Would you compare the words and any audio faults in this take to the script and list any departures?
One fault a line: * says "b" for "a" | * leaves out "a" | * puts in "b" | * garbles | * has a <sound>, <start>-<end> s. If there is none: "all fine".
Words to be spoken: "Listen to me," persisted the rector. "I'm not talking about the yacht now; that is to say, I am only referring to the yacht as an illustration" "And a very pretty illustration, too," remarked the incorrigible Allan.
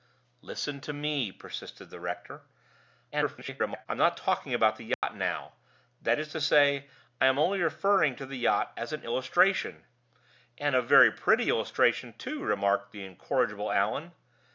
* garbles
* has a dropout, 4.9-5.0 s